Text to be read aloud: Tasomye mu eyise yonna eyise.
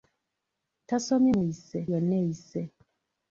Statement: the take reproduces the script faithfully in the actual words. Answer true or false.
true